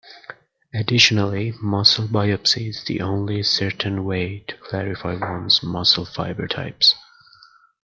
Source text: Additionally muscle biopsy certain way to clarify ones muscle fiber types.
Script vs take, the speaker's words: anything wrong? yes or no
yes